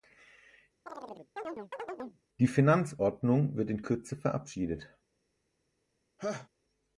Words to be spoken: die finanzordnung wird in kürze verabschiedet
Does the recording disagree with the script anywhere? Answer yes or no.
no